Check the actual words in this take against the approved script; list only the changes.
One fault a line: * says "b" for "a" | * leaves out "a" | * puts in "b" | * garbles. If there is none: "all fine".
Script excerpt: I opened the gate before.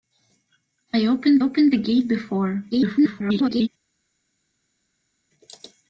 * puts in "opened"
* garbles